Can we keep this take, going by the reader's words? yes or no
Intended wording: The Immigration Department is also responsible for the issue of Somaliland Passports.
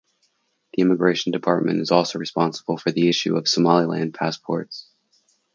yes